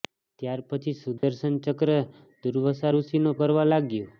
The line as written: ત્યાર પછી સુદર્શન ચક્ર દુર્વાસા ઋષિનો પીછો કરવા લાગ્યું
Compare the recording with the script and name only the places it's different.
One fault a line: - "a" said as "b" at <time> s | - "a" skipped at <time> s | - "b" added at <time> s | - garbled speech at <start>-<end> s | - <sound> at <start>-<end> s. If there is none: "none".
- dropout at 1.2-1.2 s
- "પીછો" skipped at 3.3 s